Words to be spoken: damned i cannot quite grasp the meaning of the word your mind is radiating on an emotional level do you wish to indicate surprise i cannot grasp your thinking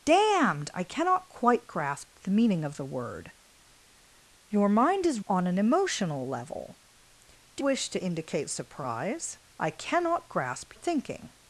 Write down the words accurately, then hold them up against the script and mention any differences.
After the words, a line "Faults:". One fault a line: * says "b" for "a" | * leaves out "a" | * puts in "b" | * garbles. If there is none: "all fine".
damned i cannot quite grasp the meaning of the word your mind is on an emotional level do wish to indicate surprise i cannot grasp thinking
Faults:
* leaves out "radiating"
* leaves out "you"
* leaves out "your"